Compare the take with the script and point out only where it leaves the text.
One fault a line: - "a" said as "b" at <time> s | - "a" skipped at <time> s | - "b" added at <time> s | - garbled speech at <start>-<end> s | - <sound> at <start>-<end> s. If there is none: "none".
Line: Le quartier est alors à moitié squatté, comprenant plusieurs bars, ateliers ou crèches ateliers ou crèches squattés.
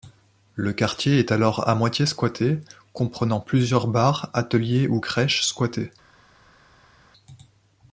- "ateliers ou crèches" skipped at 5.4 s